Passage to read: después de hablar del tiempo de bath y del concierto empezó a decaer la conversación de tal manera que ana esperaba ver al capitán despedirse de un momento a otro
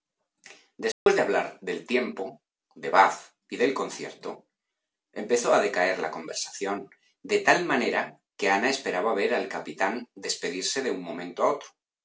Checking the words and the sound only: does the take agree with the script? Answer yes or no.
no